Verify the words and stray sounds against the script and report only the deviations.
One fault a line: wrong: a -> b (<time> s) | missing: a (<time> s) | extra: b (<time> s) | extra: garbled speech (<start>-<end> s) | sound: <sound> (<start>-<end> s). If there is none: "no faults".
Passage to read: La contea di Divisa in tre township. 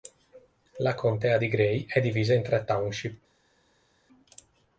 extra: Gray è (1.5 s)